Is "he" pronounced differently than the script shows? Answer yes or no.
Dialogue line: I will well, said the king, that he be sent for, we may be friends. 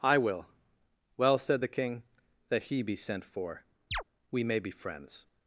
no